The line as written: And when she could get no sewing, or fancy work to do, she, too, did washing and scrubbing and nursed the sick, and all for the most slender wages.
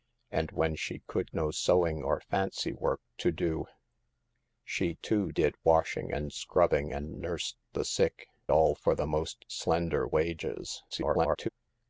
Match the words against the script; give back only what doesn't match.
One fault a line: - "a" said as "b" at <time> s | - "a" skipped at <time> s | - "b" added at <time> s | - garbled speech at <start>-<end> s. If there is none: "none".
- "get" skipped at 1.3 s
- "and" skipped at 8.3 s
- garbled speech at 10.9-11.5 s